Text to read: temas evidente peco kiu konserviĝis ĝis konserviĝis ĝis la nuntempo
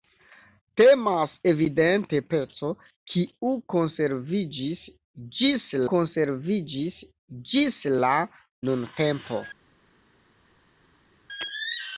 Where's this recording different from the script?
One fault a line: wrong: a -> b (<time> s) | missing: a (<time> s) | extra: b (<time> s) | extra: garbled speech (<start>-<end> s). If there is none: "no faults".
no faults